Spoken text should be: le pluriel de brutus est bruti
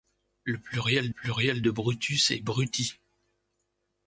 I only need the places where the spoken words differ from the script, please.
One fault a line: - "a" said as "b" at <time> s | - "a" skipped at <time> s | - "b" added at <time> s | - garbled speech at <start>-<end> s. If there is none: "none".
- "pluriel" added at 1.1 s